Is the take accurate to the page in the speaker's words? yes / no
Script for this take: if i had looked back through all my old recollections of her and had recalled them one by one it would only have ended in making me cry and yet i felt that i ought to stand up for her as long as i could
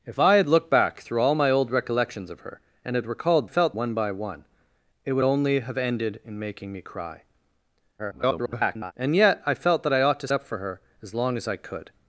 no